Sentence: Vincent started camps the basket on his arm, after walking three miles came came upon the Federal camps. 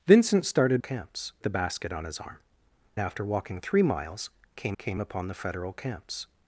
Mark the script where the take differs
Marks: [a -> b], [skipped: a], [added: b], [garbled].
Vincent started camps the basket on his arm, after walking three miles came came upon the Federal camps.